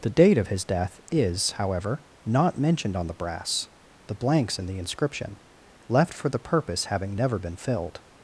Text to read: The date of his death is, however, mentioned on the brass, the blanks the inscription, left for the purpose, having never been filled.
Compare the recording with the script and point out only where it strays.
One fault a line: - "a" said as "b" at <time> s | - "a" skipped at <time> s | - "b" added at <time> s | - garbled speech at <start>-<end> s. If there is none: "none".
- "not" added at 2.2 s
- "in" added at 4.6 s